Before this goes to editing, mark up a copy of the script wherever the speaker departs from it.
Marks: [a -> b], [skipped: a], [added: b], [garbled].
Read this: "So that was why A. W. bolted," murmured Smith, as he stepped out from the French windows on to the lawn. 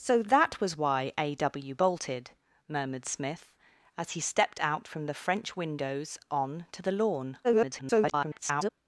"So that was why A. W. bolted," murmured Smith, as he stepped out from the French windows on to the lawn. [garbled]